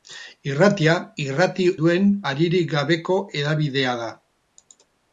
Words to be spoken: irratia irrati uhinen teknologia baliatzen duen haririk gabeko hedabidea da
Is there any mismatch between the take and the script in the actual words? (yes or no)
yes